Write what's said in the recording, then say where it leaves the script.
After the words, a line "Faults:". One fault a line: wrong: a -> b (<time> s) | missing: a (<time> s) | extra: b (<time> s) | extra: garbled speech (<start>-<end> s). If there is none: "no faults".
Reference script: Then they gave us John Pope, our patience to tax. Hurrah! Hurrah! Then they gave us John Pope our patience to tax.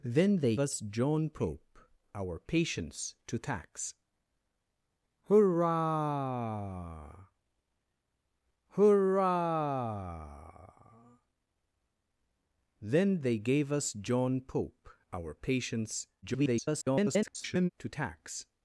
Then they us John Pope, our patience to tax. Hurrah! Hurrah! Then they gave us John Pope our patience [garbled] to tax.
Faults:
missing: gave (0.6 s)
extra: garbled speech (16.2-17.7 s)